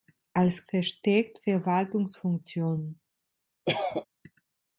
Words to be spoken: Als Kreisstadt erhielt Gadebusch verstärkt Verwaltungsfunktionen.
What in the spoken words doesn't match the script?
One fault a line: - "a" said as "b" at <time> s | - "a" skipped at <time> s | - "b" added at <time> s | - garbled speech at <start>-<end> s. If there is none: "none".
- "Kreisstadt erhielt Gadebusch" skipped at 0.7 s